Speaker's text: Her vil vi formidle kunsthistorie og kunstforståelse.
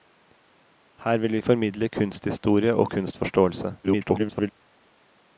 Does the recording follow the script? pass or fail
fail